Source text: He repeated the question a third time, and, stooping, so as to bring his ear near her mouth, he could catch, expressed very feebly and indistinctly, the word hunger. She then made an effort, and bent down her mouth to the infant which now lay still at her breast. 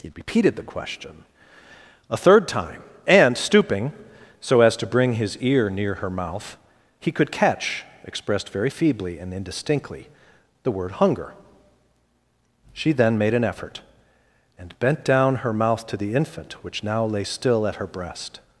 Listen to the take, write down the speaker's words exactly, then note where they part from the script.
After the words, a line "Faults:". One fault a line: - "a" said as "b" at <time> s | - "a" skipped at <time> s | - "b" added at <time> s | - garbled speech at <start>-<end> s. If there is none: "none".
He repeated the question a third time, and, stooping, so as to bring his ear near her mouth, he could catch, expressed very feebly and indistinctly, the word hunger. She then made an effort, and bent down her mouth to the infant which now lay still at her breast.
Faults:
none